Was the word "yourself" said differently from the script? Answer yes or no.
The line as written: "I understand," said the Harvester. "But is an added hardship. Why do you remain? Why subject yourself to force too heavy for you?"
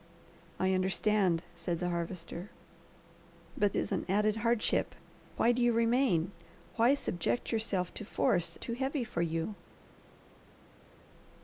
no